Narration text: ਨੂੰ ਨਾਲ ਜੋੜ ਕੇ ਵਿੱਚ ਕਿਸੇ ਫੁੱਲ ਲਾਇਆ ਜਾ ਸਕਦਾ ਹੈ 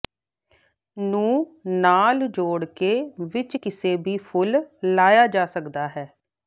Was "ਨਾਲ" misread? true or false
false